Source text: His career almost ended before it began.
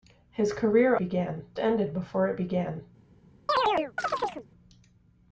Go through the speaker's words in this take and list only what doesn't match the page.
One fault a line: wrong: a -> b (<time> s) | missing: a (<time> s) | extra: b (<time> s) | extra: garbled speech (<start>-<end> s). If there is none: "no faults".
wrong: almost -> began (1.0 s)